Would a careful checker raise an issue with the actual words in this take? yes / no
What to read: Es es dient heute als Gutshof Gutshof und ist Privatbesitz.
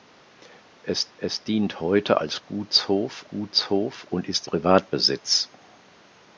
no